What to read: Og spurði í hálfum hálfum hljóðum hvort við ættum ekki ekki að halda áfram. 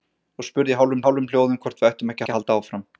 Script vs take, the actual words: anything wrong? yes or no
no